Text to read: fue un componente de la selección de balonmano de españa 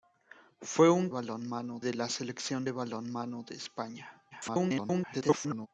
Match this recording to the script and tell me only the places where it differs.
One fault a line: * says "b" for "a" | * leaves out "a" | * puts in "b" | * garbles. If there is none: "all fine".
* says "balonmano" for "componente"
* garbles